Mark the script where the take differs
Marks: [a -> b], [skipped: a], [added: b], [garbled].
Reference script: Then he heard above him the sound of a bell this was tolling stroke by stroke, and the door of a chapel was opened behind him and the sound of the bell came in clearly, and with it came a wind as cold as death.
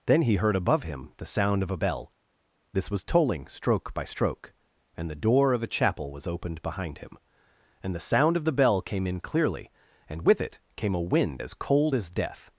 Then he heard above him the sound of a bell this was tolling stroke by stroke, and the door of a chapel was opened behind him and the sound of the bell came in clearly, and with it came a wind as cold as death.